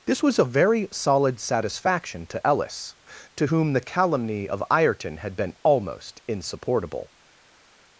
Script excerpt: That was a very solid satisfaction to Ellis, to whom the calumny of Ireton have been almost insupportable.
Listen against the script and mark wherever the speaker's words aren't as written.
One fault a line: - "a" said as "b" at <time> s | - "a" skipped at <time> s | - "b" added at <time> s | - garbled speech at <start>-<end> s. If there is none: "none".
- "That" said as "This" at 0.1 s
- "have" said as "had" at 5.2 s